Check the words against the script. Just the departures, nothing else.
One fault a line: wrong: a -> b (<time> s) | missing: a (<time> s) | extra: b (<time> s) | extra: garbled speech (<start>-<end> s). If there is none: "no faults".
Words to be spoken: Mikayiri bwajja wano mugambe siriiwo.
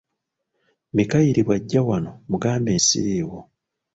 no faults